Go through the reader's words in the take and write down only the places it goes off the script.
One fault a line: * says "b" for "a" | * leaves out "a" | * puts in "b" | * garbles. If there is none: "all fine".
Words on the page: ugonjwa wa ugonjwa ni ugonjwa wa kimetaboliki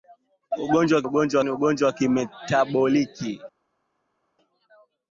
all fine